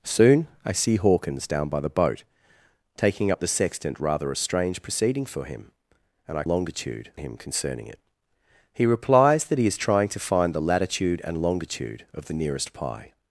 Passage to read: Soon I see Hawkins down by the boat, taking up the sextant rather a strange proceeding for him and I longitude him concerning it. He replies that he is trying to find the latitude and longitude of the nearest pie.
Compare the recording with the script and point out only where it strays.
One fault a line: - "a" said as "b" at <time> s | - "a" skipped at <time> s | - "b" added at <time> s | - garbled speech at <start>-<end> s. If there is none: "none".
none